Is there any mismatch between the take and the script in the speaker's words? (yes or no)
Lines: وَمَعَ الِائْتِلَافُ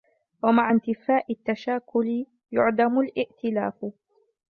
yes